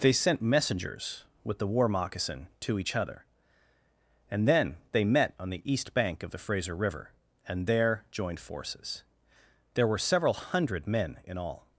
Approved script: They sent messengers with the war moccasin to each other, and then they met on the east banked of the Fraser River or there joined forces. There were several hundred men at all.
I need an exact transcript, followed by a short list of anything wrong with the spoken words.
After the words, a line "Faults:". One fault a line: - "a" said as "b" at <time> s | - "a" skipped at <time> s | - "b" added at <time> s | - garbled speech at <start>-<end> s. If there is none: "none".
They sent messengers with the war moccasin to each other, and then they met on the east bank of the Fraser River and there joined forces. There were several hundred men in all.
Faults:
- "banked" said as "bank" at 5.9 s
- "or" said as "and" at 7.5 s
- "at" said as "in" at 11.2 s